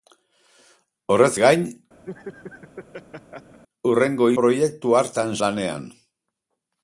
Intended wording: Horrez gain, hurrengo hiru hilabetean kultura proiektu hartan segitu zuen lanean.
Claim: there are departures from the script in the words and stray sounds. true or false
true